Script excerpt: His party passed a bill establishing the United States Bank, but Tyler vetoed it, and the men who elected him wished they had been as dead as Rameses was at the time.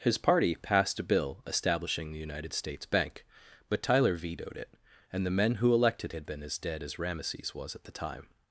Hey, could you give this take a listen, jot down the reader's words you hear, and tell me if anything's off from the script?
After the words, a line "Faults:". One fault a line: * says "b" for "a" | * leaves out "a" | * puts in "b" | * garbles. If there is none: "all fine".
His party passed a bill establishing the United States Bank, but Tyler vetoed it, and the men who elected had been as dead as Rameses was at the time.
Faults:
* leaves out "him wished they"